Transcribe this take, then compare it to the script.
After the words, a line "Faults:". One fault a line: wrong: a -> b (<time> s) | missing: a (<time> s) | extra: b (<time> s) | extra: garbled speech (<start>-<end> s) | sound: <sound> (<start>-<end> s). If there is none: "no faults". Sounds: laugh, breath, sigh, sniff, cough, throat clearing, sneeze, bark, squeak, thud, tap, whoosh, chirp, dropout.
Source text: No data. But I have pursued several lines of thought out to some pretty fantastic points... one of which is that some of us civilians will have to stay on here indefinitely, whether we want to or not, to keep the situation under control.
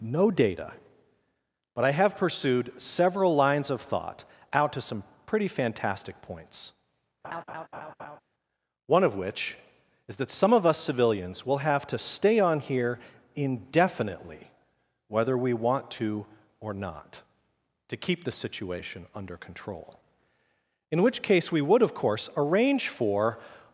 No data. But I have pursued several lines of thought out to some pretty fantastic points... one of which is that some of us civilians will have to stay on here indefinitely, whether we want to or not, to keep the situation under control. In which case we would, of course, arrange for
Faults:
sound: laugh (7.2-8.2 s)
extra: In which case we would of course arrange for (20.9 s)